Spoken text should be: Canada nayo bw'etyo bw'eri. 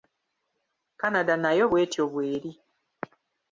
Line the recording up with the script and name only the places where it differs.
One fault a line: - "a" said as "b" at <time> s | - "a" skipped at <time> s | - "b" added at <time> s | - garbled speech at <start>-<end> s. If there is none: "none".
none